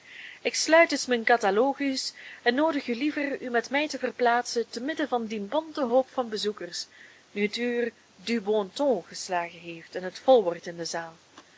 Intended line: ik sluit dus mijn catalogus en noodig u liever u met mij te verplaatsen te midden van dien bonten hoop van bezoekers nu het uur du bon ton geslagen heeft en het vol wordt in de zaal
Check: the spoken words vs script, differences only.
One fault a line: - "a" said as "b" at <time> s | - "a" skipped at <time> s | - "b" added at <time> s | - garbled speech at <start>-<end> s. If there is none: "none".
none